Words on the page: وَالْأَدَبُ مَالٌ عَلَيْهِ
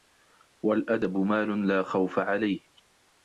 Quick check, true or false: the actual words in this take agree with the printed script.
false